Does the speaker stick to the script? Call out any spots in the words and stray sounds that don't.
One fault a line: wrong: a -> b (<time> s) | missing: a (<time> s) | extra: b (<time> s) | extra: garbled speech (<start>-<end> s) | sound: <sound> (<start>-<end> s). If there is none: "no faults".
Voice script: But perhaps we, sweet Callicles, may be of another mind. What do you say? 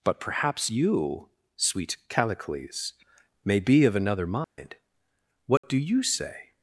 wrong: we -> you (0.7 s)
sound: dropout (4.4-4.6 s)
sound: dropout (5.6-5.6 s)